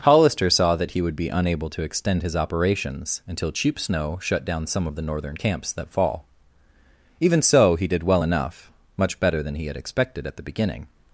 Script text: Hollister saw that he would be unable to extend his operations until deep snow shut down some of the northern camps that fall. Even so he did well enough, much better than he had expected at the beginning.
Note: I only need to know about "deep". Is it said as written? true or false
false